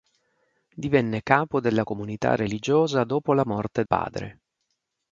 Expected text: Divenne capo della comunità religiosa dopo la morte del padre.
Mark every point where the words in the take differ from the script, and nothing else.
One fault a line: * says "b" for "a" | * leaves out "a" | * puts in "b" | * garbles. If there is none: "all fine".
* leaves out "del"